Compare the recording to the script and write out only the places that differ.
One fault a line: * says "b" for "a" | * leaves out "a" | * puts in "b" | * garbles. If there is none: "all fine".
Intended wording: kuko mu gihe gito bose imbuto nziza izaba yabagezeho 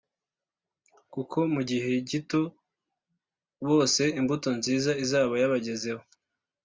all fine